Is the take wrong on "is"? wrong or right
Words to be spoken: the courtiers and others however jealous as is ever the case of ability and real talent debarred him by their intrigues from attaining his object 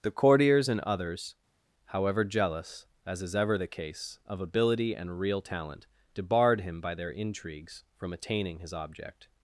right